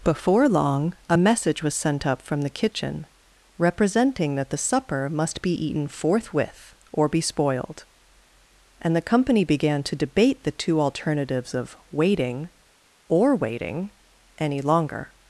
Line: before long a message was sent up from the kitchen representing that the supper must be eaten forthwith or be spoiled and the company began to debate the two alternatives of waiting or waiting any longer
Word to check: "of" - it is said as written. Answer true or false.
true